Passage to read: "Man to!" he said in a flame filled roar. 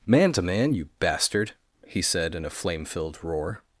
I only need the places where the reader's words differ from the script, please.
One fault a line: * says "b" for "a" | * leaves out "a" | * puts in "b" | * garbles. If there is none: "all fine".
* puts in "man you bastard"